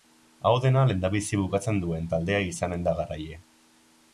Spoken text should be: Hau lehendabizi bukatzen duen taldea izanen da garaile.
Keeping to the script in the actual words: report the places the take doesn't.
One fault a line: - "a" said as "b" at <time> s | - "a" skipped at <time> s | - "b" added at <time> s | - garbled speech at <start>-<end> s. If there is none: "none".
- "dena" added at 0.6 s